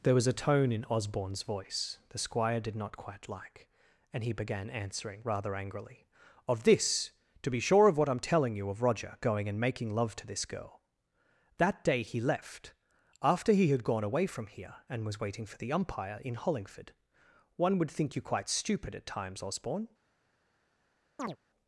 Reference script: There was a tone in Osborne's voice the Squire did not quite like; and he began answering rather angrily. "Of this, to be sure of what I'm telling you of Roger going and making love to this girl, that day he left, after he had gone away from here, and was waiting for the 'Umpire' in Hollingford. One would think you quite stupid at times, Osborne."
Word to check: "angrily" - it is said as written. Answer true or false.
true